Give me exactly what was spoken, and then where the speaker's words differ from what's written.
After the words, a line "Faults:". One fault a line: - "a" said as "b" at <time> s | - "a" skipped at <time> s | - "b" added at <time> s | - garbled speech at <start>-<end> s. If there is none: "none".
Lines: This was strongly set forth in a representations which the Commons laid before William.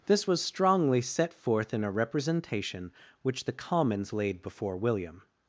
This was strongly set forth in a representation which the Commons laid before William.
Faults:
- "representations" said as "representation" at 1.9 s